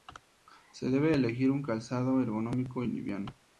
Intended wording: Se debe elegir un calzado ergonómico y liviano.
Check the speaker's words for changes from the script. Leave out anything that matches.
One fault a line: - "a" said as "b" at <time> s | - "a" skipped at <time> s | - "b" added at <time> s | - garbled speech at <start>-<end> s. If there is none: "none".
none